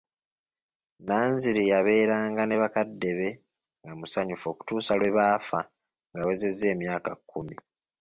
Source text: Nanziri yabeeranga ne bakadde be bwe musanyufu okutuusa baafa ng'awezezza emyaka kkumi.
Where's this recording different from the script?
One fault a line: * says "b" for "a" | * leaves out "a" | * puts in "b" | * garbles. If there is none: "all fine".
* says "nga" for "bwe"
* puts in "lwe"